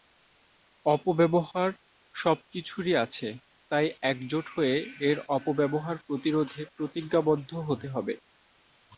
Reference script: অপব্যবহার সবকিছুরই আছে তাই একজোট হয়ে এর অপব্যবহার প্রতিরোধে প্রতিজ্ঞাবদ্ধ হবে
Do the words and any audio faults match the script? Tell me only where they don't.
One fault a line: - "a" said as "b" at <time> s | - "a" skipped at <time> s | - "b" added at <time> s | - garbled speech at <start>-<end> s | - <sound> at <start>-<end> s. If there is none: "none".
- "হতে" added at 7.7 s